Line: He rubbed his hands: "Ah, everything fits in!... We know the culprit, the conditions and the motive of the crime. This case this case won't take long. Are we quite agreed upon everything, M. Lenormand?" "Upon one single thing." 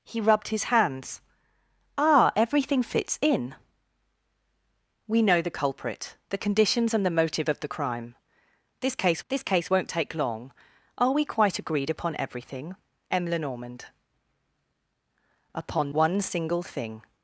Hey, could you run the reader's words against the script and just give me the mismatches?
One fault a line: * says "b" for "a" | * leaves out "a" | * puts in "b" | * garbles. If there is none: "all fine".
all fine